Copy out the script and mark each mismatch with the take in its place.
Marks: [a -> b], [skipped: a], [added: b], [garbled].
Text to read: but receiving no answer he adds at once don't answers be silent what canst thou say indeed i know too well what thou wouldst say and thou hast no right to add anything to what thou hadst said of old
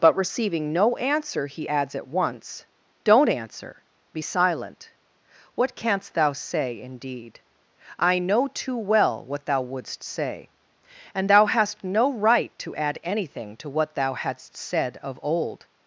but receiving no answer he adds at once don't [answers -> answer] be silent what canst thou say indeed i know too well what thou wouldst say and thou hast no right to add anything to what thou hadst said of old